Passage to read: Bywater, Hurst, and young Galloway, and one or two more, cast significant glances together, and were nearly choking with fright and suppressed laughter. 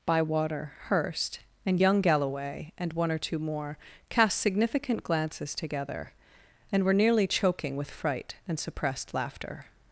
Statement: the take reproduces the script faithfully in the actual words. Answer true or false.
true